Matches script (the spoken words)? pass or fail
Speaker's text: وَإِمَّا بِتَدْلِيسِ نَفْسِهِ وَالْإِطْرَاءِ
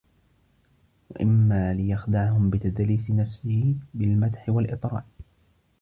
fail